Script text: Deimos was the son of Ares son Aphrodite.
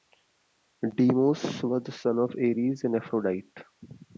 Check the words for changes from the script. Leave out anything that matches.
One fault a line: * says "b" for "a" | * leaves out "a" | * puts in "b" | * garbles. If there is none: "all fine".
* says "and" for "son"